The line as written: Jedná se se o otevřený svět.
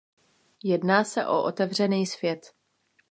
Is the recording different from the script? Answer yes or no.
yes